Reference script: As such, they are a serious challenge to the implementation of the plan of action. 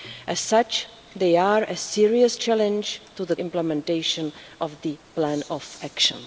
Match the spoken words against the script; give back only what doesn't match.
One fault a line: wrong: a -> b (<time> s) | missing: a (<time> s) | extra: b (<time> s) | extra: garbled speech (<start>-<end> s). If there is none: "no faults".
no faults